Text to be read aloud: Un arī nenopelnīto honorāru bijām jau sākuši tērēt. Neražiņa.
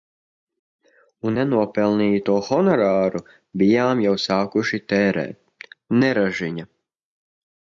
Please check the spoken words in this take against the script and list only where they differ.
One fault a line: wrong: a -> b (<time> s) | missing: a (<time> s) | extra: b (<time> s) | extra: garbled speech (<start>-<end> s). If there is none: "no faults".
missing: arī (1.4 s)